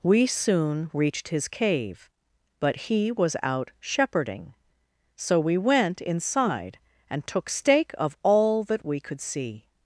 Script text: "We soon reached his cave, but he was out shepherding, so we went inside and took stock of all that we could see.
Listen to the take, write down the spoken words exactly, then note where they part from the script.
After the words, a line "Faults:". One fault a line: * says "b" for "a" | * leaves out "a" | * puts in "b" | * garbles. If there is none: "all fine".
"We soon reached his cave, but he was out shepherding, so we went inside and took stake of all that we could see.
Faults:
* says "stake" for "stock"